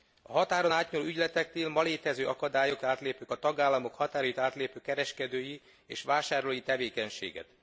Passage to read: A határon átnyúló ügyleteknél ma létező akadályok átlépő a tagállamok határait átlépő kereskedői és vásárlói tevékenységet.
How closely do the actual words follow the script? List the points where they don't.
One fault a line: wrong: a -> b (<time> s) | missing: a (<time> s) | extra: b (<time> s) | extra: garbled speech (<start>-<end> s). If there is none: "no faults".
no faults